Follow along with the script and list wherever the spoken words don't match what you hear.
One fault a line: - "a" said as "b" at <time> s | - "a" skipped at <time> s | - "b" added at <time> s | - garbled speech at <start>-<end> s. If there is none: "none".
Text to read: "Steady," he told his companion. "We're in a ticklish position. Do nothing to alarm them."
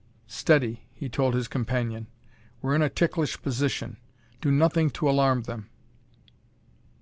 none